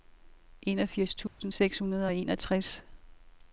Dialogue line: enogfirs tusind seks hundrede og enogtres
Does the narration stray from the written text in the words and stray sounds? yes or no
yes